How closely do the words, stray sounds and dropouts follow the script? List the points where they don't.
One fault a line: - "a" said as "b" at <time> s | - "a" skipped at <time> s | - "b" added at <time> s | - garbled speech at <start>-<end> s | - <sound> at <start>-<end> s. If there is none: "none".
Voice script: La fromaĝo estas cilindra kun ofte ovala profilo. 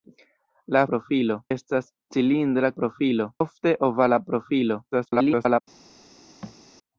- "fromaĝo" said as "profilo" at 0.9 s
- "kun" said as "profilo" at 2.8 s
- garbled speech at 4.9-5.6 s
- thud at 6.4-6.6 s